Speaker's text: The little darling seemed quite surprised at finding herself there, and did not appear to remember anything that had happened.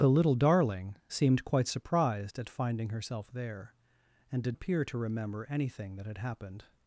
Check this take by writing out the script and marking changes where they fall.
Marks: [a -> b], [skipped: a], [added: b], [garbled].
The little darling seemed quite surprised at finding herself there, and did [skipped: not] appear to remember anything that had happened.